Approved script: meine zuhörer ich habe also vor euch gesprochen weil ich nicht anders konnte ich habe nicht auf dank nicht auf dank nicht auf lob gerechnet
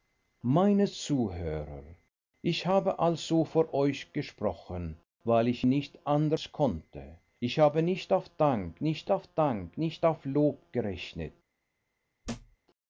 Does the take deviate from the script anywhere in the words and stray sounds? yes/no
yes